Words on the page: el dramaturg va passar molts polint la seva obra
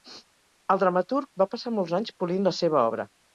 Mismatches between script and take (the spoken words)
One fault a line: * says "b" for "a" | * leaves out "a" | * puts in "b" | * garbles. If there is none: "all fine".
* puts in "anys"